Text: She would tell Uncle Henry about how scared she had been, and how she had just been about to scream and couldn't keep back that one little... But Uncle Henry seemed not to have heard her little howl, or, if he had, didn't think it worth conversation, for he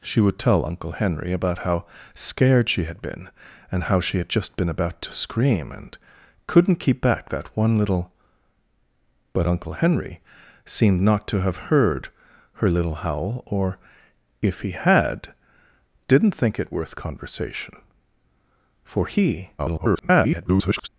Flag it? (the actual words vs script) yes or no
yes